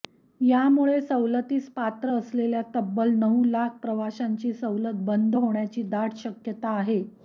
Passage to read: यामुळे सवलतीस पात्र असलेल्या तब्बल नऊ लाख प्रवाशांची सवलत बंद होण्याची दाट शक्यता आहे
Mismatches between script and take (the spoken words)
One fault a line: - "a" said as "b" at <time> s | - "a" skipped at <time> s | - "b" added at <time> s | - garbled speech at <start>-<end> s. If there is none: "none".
none